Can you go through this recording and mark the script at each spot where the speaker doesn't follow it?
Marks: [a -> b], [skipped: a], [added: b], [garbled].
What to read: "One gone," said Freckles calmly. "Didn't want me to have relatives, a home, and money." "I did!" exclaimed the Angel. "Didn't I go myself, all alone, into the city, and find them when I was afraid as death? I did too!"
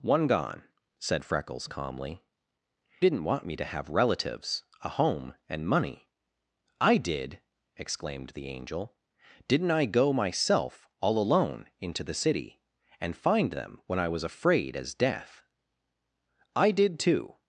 "One gone," said Freckles calmly. "Didn't want me to have relatives, a home, and money." "I did!" exclaimed the Angel. "Didn't I go myself, all alone, into the city, and find them when I was afraid as death? I did too!"